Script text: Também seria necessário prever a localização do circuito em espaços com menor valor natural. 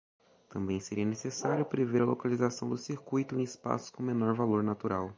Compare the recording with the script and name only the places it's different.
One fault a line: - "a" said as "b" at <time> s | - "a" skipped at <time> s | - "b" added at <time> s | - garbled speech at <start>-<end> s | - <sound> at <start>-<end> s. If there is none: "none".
none